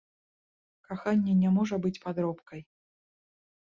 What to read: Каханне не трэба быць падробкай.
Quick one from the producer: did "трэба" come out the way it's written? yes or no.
no